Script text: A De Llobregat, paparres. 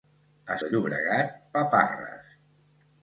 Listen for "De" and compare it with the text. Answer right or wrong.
right